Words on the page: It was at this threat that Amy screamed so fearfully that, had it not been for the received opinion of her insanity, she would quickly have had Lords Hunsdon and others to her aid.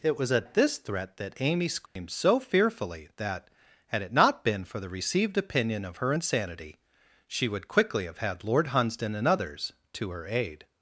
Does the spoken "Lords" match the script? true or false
false